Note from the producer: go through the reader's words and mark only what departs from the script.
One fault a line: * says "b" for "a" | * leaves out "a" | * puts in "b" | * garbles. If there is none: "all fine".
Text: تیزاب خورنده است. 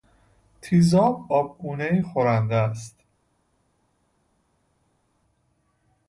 * puts in "آبگونهای"